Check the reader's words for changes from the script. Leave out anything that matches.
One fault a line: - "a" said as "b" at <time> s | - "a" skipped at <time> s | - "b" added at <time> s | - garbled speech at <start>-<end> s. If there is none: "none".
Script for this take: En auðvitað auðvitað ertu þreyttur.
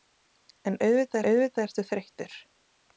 none